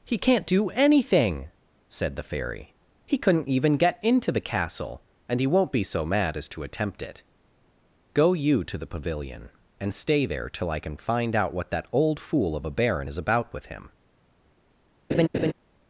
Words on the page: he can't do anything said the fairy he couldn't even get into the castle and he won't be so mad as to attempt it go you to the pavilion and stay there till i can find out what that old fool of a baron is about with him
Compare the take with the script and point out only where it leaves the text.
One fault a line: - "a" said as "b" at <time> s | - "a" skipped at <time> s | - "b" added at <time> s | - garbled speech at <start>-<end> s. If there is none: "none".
none